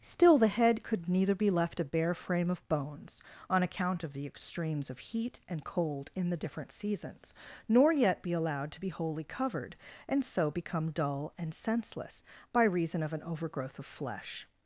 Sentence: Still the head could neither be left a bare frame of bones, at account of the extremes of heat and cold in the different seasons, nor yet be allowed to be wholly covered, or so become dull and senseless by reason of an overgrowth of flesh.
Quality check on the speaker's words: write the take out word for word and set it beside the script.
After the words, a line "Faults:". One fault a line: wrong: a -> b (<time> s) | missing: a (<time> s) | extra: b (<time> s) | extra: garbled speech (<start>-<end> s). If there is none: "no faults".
Still the head could neither be left a bare frame of bones, on account of the extremes of heat and cold in the different seasons, nor yet be allowed to be wholly covered, and so become dull and senseless by reason of an overgrowth of flesh.
Faults:
wrong: at -> on (3.5 s)
wrong: or -> and (10.1 s)